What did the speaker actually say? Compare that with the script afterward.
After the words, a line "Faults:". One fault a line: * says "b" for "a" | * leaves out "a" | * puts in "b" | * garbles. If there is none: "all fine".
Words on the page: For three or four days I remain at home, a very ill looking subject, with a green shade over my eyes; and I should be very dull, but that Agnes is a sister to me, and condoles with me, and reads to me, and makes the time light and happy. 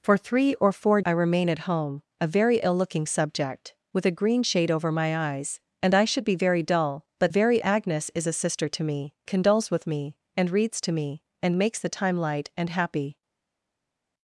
For three or four I remain at home, a very ill looking subject, with a green shade over my eyes; and I should be very dull, but very Agnes is a sister to me, condoles with me, and reads to me, and makes the time light and happy.
Faults:
* leaves out "days"
* says "very" for "that"
* leaves out "and"